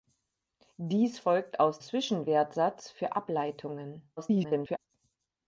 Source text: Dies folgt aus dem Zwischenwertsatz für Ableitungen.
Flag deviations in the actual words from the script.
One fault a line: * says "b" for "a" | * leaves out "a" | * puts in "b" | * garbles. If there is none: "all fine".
* leaves out "dem"
* garbles